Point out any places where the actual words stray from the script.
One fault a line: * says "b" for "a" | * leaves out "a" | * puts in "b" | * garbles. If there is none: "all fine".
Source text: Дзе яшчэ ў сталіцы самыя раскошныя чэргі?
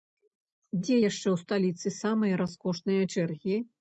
all fine